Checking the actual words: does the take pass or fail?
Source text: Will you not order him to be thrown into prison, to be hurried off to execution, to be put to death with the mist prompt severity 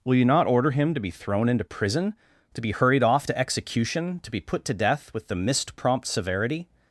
pass